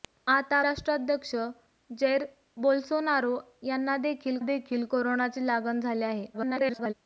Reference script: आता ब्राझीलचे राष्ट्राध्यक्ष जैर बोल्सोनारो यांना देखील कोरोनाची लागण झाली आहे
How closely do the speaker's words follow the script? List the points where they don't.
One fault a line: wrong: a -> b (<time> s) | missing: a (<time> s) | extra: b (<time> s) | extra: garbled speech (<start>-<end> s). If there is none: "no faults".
missing: ब्राझीलचे (0.6 s)
extra: देखील (4.4 s)
extra: garbled speech (6.3-6.9 s)